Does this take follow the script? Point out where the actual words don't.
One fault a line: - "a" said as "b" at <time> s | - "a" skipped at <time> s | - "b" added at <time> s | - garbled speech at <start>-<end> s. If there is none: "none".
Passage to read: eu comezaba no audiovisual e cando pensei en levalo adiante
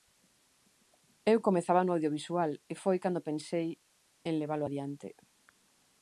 - "foi" added at 2.8 s